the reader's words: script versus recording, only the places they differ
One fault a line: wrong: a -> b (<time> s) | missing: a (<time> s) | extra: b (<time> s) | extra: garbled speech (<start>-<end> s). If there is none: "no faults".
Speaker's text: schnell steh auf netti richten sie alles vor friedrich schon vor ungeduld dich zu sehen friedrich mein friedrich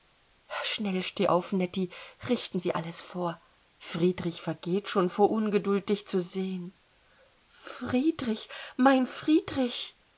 extra: vergeht (4.4 s)